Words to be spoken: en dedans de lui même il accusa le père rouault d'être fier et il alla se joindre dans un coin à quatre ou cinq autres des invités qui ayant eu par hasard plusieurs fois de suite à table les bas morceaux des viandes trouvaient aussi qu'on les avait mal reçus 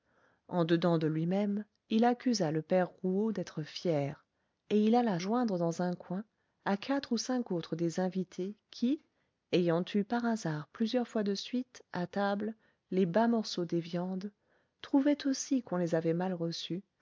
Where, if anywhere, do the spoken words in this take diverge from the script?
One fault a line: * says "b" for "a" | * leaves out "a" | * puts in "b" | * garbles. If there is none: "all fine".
* leaves out "se"